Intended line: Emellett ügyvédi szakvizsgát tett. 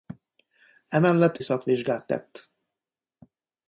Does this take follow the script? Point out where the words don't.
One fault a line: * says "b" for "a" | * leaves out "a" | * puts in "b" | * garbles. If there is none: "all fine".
* leaves out "ügyvédi"